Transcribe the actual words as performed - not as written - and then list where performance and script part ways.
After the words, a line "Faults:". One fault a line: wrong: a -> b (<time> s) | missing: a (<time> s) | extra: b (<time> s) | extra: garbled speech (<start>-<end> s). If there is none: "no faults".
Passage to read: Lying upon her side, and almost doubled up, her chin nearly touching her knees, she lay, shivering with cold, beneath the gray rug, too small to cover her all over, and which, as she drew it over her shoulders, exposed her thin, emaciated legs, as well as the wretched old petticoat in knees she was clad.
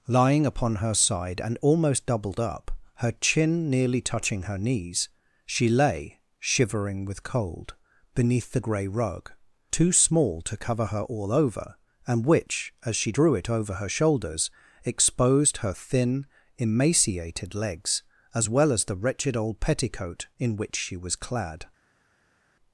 Lying upon her side, and almost doubled up, her chin nearly touching her knees, she lay, shivering with cold, beneath the gray rug, too small to cover her all over, and which, as she drew it over her shoulders, exposed her thin, emaciated legs, as well as the wretched old petticoat in which she was clad.
Faults:
wrong: knees -> which (20.6 s)